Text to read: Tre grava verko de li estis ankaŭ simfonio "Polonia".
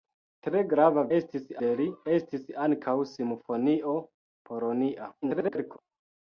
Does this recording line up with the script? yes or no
no